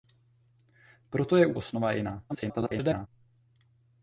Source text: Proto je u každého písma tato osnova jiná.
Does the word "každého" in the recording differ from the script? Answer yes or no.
yes